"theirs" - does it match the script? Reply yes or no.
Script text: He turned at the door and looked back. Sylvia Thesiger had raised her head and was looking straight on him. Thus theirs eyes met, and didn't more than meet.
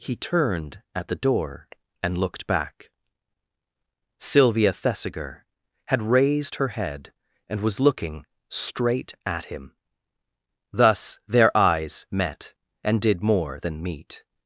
no